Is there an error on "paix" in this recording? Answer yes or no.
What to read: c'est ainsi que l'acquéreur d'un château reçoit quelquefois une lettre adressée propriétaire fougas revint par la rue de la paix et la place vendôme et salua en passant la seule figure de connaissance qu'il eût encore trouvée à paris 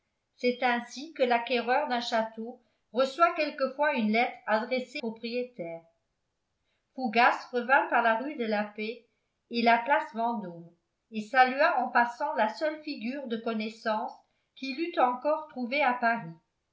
no